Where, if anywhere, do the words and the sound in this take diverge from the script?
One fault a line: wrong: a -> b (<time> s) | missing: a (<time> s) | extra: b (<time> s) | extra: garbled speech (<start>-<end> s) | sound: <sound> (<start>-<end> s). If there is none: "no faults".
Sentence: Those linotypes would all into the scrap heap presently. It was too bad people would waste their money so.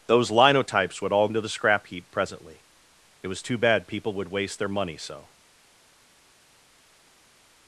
no faults